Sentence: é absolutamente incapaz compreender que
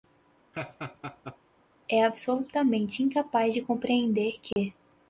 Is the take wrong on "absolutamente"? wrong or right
right